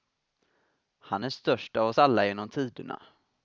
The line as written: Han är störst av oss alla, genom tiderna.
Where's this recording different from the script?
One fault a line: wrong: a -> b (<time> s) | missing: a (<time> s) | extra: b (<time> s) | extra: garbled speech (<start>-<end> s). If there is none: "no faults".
no faults